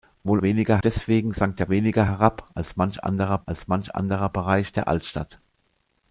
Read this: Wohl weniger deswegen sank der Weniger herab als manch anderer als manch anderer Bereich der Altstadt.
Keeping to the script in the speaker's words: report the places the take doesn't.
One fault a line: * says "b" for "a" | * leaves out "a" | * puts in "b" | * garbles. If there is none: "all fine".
all fine